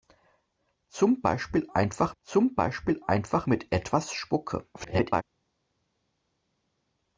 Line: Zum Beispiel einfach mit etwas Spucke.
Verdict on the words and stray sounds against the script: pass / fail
fail